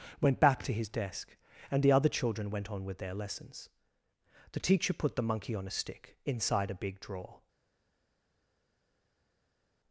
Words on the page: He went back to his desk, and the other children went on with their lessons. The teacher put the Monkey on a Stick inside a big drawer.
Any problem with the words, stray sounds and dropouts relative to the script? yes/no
yes